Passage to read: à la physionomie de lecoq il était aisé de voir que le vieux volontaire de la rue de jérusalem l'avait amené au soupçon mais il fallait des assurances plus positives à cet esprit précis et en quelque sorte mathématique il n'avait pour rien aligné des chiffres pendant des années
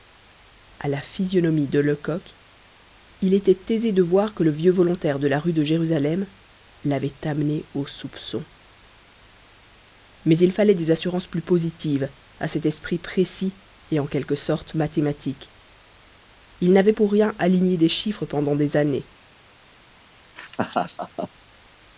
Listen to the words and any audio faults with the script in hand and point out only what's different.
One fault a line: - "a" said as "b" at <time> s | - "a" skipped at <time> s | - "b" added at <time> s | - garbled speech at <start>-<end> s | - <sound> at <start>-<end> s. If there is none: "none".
- laugh at 20.4-21.3 s